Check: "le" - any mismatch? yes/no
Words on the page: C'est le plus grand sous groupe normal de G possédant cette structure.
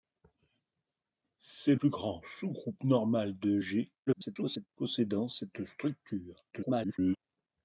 yes